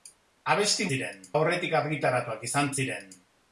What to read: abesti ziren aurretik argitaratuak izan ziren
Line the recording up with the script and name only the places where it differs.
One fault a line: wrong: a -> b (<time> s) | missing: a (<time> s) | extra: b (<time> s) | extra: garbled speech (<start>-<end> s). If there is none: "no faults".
no faults